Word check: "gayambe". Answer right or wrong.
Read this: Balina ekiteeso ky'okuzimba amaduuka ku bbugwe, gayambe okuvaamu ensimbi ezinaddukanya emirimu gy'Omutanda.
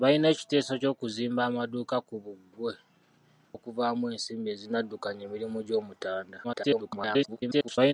wrong